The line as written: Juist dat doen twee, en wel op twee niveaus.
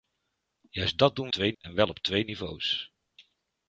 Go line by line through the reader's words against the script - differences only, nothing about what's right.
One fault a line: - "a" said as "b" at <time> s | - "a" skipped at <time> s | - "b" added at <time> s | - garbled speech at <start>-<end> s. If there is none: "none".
none